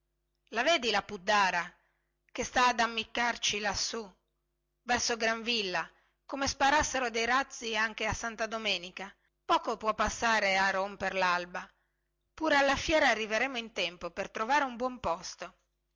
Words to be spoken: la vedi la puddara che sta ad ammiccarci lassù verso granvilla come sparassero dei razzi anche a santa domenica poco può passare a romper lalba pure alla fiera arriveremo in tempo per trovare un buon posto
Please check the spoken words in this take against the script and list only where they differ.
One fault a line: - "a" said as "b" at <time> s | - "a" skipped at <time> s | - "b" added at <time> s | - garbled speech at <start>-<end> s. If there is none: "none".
none